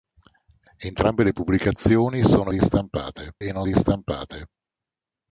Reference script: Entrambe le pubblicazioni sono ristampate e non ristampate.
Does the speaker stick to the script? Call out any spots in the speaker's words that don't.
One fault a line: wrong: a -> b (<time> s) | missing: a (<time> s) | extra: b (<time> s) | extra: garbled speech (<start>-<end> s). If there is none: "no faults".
no faults